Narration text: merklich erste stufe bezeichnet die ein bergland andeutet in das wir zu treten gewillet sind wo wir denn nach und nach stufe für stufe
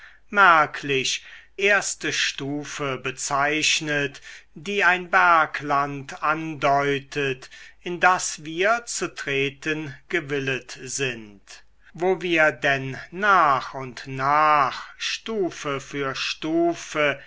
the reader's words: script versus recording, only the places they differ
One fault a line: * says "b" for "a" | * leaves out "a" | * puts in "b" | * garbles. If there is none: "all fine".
all fine